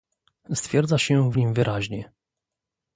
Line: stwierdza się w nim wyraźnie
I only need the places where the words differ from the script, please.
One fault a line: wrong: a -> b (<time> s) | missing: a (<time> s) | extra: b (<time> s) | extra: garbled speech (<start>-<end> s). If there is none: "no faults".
no faults